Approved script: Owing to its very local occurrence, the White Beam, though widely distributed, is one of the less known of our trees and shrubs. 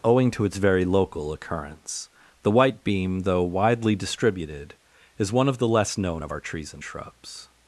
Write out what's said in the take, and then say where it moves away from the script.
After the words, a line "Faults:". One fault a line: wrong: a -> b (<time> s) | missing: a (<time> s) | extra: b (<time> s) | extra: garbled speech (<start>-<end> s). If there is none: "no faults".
Owing to its very local occurrence, the White Beam, though widely distributed, is one of the less known of our trees and shrubs.
Faults:
no faults